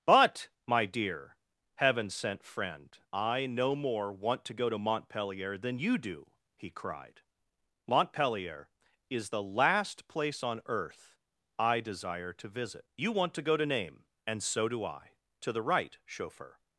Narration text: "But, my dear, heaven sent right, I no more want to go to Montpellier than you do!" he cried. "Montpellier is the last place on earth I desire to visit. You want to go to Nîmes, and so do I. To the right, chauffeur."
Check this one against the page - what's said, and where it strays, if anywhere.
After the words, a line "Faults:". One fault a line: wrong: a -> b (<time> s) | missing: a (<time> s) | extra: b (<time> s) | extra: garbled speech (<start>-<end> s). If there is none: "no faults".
"But, my dear, heaven sent friend, I no more want to go to Montpellier than you do!" he cried. "Montpellier is the last place on earth I desire to visit. You want to go to Nîmes, and so do I. To the right, chauffeur."
Faults:
wrong: right -> friend (2.4 s)